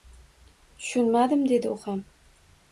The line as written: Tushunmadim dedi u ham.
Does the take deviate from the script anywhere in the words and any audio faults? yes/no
no